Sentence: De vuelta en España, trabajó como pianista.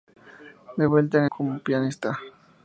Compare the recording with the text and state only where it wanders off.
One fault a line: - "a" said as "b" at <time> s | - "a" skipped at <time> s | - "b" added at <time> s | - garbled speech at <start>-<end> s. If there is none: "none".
- "España trabajó" skipped at 1.3 s